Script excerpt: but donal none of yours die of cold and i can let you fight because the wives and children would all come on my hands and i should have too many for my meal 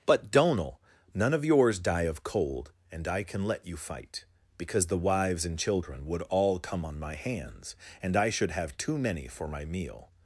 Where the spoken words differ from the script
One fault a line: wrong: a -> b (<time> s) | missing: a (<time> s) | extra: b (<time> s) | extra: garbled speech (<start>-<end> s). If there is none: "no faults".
no faults